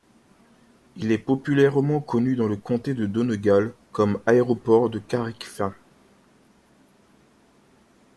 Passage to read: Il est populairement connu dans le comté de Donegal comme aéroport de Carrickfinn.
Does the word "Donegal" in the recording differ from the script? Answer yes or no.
no